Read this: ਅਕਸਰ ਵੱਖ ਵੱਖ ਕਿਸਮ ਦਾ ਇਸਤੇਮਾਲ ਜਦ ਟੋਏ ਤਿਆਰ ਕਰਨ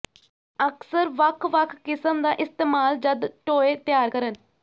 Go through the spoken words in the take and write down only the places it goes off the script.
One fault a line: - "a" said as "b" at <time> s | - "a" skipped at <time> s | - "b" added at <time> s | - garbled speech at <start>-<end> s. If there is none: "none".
none